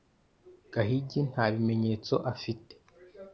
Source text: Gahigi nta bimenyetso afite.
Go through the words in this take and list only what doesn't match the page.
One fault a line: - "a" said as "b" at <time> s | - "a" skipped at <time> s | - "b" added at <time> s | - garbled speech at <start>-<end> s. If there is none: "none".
none